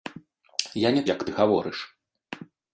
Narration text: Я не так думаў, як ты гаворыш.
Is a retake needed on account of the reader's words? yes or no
yes